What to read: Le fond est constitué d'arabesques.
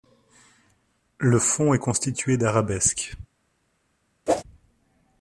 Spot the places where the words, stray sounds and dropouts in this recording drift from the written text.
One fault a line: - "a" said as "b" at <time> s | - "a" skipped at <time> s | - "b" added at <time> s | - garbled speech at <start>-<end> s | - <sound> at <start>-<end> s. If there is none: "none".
- whoosh at 4.3-4.4 s